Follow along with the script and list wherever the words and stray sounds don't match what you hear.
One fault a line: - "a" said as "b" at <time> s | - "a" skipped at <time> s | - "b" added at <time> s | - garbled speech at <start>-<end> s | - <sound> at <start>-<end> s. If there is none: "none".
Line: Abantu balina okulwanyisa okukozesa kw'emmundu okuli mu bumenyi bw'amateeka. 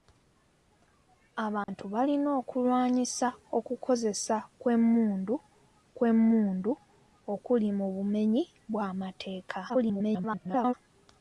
- dropout at 1.6-1.7 s
- "kw'emmundu" added at 5.9 s
- garbled speech at 9.7-10.7 s